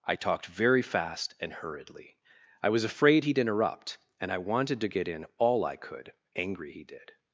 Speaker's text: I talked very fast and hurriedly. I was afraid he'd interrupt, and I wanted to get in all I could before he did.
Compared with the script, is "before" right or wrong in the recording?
wrong